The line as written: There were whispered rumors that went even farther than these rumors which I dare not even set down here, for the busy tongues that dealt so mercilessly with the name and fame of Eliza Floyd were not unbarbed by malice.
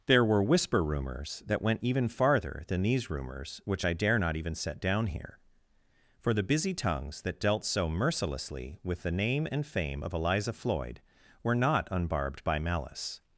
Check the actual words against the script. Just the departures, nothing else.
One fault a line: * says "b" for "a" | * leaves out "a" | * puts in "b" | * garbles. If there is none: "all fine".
* says "whisper" for "whispered"